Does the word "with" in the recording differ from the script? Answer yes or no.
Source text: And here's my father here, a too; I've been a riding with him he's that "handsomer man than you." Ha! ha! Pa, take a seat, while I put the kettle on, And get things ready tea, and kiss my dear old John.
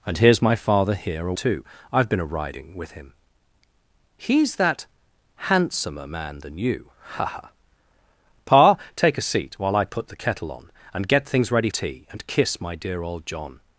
no